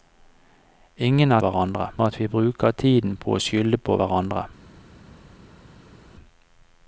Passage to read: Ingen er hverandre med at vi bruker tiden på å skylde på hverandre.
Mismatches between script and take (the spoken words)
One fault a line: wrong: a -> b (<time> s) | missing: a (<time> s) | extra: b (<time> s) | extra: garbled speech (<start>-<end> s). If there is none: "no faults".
no faults